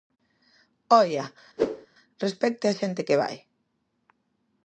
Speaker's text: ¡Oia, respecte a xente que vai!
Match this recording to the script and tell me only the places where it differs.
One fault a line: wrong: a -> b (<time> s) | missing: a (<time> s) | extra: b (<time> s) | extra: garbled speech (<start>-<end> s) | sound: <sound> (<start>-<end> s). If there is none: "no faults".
sound: whoosh (1.6-1.9 s)